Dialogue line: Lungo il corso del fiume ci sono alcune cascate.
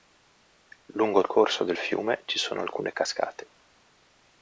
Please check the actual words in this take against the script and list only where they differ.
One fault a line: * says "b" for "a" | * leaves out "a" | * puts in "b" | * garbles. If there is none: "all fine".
all fine